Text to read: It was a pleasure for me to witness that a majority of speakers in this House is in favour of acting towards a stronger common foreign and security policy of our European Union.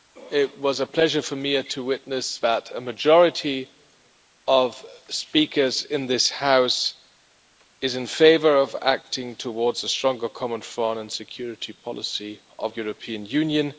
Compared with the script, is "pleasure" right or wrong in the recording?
right